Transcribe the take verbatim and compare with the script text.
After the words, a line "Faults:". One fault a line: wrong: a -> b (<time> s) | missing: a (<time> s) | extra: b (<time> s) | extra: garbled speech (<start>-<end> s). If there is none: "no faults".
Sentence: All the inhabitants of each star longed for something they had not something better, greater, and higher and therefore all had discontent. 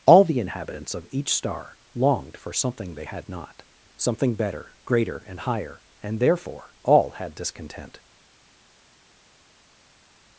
All the inhabitants of each star longed for something they had not something better, greater, and higher and therefore all had discontent.
Faults:
no faults